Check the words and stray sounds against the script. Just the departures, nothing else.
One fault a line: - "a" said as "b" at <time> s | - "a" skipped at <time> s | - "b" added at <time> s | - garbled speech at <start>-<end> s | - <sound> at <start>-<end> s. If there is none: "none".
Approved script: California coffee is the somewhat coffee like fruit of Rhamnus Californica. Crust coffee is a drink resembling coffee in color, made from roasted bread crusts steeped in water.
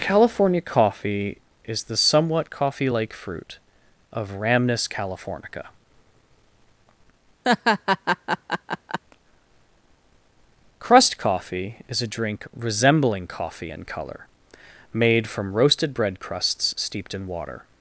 - laugh at 7.4-9.0 s